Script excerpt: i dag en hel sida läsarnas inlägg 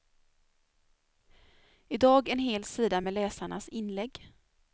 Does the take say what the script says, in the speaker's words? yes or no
no